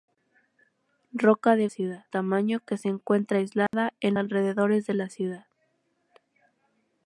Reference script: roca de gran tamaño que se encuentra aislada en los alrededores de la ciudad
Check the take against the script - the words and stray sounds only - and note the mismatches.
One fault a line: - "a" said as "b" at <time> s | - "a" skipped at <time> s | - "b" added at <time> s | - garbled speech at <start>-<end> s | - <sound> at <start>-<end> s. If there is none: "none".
- "gran" said as "ciudad" at 1.7 s
- dropout at 3.7-3.7 s
- "los" skipped at 4.1 s